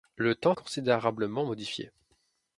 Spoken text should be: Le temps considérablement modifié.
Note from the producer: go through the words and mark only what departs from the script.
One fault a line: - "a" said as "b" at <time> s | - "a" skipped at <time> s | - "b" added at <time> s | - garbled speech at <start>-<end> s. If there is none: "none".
none